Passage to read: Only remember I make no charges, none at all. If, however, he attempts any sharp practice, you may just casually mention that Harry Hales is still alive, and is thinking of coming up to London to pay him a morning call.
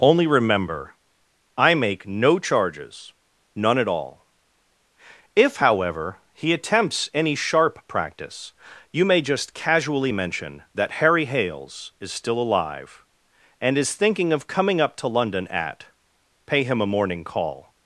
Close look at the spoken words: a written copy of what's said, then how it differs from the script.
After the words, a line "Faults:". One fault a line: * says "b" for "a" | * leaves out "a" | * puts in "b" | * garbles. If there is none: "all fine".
Only remember I make no charges, none at all. If, however, he attempts any sharp practice, you may just casually mention that Harry Hales is still alive, and is thinking of coming up to London at pay him a morning call.
Faults:
* says "at" for "to"